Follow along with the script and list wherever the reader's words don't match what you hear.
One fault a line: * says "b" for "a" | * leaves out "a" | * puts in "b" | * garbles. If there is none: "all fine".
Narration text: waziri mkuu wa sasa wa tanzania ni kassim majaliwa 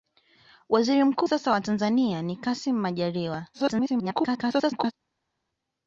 * leaves out "wa"
* garbles